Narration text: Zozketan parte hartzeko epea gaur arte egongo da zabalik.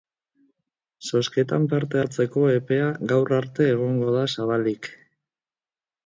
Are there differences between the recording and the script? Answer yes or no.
no